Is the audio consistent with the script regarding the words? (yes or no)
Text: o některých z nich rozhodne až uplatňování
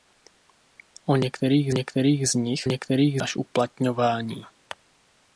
no